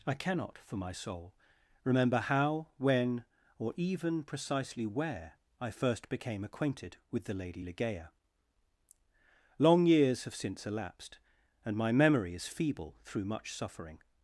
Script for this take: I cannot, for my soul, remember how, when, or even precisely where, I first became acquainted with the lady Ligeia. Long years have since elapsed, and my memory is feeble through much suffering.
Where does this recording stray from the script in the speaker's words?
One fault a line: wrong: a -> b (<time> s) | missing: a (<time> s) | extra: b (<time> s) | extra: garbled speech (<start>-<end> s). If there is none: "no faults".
no faults